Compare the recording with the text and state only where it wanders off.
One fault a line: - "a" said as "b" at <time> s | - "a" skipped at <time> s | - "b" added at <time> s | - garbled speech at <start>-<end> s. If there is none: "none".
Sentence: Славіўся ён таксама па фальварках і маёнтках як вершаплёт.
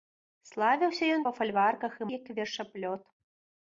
- "таксама" skipped at 1.2 s
- "маёнтках" skipped at 2.1 s